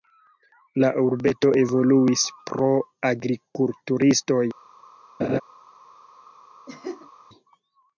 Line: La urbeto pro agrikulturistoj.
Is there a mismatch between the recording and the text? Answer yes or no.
yes